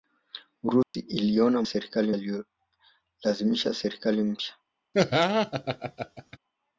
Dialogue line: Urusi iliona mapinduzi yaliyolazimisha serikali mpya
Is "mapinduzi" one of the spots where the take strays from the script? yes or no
yes